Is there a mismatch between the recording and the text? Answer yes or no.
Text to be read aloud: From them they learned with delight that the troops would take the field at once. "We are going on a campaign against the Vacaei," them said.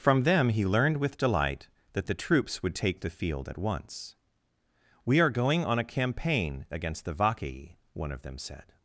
yes